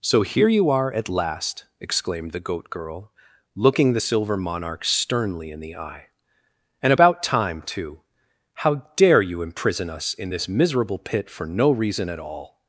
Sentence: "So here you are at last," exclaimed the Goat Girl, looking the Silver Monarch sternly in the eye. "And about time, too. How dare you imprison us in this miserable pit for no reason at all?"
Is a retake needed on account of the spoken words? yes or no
no